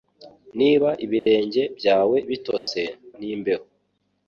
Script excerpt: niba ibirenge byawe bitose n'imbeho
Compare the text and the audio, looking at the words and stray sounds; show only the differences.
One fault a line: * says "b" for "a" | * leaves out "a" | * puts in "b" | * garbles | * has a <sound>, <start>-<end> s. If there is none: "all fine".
* has a dropout, 1.2-1.3 s
* has a dropout, 2.6-2.7 s